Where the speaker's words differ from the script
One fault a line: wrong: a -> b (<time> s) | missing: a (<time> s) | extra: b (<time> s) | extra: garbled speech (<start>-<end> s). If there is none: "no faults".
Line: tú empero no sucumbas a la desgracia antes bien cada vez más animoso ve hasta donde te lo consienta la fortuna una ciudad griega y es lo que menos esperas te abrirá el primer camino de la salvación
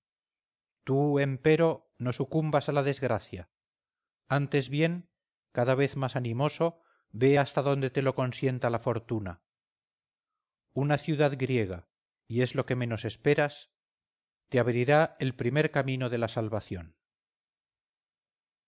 no faults